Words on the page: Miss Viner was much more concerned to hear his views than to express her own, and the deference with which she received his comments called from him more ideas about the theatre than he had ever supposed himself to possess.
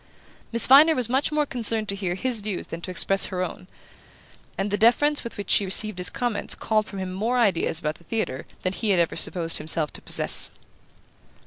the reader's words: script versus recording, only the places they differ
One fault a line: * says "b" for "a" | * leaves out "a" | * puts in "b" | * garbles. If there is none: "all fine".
all fine